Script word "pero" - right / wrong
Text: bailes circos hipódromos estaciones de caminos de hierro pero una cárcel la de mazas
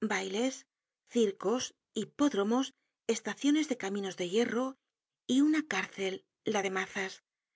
wrong